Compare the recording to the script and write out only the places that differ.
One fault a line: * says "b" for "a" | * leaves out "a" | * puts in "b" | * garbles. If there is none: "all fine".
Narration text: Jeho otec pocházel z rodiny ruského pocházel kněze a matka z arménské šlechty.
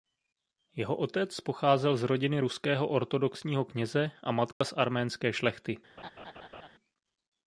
* says "ortodoxního" for "pocházel"